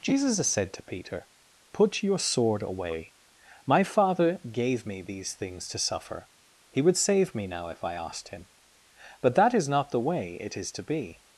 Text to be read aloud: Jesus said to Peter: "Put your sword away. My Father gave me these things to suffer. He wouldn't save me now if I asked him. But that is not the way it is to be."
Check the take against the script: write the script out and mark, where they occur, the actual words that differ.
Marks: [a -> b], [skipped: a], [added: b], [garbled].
Jesus said to Peter: "Put your sword away. My Father gave me these things to suffer. He [wouldn't -> would] save me now if I asked him. But that is not the way it is to be."